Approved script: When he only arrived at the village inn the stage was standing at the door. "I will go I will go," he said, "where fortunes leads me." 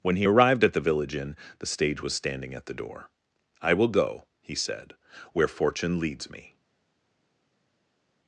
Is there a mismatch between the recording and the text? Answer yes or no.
yes